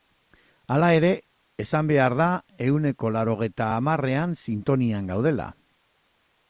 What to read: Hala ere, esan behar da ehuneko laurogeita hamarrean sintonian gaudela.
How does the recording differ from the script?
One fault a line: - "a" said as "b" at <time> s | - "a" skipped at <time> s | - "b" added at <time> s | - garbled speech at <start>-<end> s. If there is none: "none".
none